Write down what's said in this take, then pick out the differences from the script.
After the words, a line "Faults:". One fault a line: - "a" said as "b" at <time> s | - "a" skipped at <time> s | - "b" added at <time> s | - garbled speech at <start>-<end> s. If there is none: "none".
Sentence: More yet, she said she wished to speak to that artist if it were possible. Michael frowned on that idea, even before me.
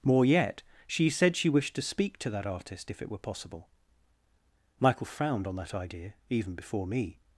More yet, she said she wished to speak to that artist if it were possible. Michael frowned on that idea, even before me.
Faults:
none